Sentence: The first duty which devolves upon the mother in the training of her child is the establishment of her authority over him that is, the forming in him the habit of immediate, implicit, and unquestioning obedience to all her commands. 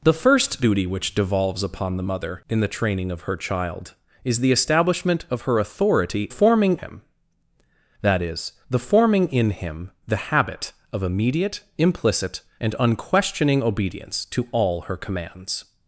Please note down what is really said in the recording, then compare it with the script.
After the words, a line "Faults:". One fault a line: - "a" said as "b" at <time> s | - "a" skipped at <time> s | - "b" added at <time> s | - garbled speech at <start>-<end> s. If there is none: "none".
The first duty which devolves upon the mother in the training of her child is the establishment of her authority forming him that is, the forming in him the habit of immediate, implicit, and unquestioning obedience to all her commands.
Faults:
- "over" said as "forming" at 6.3 s